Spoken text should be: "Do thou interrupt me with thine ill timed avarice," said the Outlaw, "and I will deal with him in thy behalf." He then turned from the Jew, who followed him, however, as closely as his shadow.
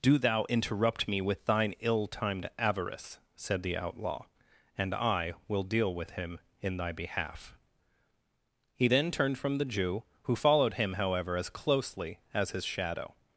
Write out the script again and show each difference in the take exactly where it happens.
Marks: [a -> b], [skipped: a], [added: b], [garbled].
"Do thou interrupt me with thine ill timed avarice," said the Outlaw, "and I will deal with him in thy behalf." He then turned from the Jew, who followed him, however, as closely as his shadow.